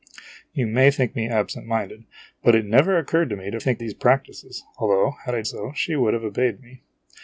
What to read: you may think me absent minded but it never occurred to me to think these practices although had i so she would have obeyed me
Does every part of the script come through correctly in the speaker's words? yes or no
yes